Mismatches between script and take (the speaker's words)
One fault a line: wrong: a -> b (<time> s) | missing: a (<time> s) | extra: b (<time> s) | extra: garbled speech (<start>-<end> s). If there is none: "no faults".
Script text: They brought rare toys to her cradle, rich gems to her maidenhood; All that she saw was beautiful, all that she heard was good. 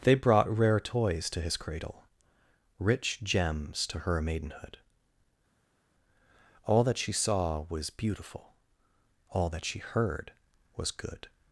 wrong: her -> his (1.4 s)